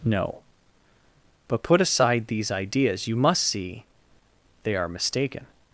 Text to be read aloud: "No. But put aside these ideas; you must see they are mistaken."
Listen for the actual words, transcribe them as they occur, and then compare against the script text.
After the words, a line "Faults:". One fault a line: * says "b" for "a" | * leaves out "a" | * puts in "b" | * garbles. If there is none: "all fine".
"No. But put aside these ideas; you must see they are mistaken."
Faults:
all fine